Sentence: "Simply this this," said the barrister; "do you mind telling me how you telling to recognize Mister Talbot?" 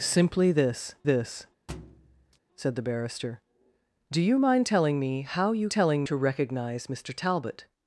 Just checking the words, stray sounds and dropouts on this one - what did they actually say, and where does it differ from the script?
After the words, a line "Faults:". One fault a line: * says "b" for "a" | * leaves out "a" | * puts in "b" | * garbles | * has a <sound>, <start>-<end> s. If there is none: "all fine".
"Simply this this," said the barrister; "do you mind telling me how you telling to recognize Mister Talbot?"
Faults:
* has a thud, 1.7-2.4 s